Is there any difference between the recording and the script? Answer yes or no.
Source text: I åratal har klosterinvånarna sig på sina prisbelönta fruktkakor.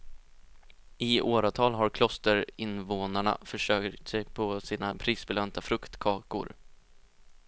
yes